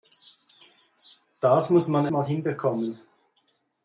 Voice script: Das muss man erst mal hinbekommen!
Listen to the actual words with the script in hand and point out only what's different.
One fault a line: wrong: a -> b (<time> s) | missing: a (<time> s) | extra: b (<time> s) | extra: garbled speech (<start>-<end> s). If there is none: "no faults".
missing: erst (2.1 s)